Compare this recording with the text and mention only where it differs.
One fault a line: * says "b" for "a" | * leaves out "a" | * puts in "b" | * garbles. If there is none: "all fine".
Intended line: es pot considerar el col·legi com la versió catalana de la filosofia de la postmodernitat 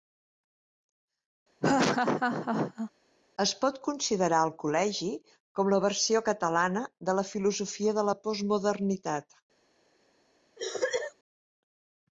all fine